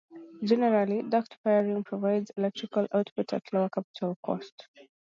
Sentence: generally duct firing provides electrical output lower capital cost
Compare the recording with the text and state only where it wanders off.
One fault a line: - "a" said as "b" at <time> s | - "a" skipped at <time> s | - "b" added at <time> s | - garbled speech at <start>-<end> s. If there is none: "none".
- "at" added at 3.3 s